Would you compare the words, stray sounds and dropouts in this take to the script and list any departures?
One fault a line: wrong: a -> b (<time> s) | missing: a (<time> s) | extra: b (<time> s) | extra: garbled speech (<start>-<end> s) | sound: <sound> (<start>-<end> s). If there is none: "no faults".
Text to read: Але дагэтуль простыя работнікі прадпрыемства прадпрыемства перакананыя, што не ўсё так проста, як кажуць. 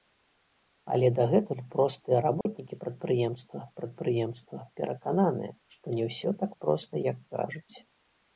sound: dropout (2.4-2.5 s)